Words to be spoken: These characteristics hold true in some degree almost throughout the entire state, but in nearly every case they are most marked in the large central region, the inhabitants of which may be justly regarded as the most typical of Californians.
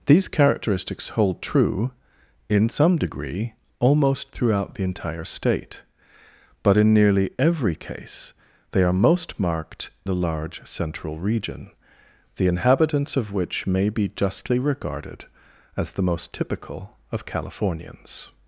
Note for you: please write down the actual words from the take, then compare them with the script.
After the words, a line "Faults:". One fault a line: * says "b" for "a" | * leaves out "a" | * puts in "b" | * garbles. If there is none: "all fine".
These characteristics hold true in some degree almost throughout the entire state, but in nearly every case they are most marked the large central region, the inhabitants of which may be justly regarded as the most typical of Californians.
Faults:
* leaves out "in"